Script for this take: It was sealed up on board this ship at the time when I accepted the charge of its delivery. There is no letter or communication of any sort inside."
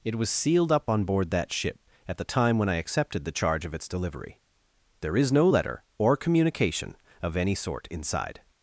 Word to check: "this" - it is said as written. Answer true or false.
false